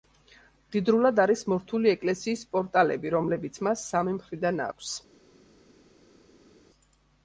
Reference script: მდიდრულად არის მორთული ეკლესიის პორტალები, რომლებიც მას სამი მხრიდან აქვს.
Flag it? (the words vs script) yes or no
no